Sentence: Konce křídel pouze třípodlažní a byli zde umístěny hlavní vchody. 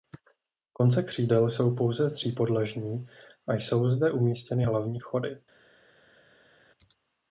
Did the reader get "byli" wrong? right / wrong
wrong